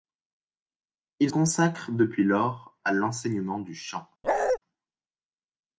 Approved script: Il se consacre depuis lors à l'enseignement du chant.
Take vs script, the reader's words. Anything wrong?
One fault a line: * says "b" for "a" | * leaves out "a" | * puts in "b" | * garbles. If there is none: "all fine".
* leaves out "se"